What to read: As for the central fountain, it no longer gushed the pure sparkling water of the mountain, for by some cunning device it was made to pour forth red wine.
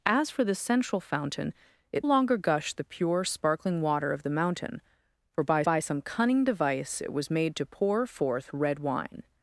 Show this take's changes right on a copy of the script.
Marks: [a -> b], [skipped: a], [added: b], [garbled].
As for the central fountain, it [skipped: no] longer gushed the pure sparkling water of the mountain, for by [added: by] some cunning device it was made to pour forth red wine.